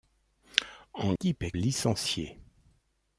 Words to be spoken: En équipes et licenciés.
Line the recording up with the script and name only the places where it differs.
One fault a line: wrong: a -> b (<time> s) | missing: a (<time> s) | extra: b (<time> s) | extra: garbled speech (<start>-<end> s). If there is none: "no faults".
no faults